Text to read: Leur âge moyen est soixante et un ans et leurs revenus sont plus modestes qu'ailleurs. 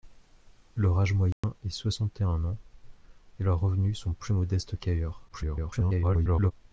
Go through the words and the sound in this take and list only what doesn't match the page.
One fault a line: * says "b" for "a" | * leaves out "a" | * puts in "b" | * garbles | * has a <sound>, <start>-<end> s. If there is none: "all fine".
* has a dropout, 1.3-1.4 s
* garbles